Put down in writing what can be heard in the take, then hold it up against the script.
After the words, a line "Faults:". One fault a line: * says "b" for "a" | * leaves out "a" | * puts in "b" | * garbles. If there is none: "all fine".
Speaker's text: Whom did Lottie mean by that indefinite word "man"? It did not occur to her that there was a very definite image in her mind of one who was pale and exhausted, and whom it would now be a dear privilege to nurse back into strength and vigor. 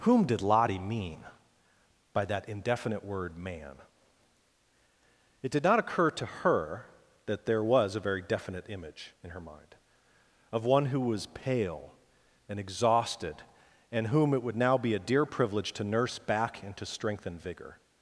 Whom did Lottie mean by that indefinite word "man"? It did not occur to her that there was a very definite image in her mind of one who was pale and exhausted, and whom it would now be a dear privilege to nurse back into strength and vigor.
Faults:
all fine